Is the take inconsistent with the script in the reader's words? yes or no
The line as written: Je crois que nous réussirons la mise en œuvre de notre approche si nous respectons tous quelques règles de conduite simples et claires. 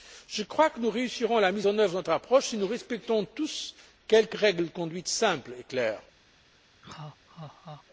no